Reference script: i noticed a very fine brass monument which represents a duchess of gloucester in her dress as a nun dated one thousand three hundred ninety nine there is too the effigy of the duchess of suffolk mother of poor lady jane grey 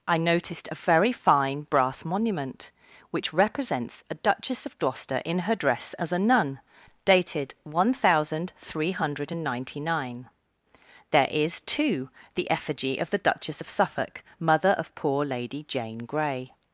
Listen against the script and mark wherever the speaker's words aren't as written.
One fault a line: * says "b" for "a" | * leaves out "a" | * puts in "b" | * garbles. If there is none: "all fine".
all fine